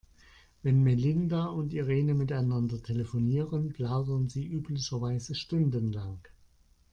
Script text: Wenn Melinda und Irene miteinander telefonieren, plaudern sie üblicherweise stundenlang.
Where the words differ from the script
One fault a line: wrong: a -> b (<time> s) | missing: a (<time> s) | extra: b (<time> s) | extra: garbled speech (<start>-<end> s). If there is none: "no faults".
no faults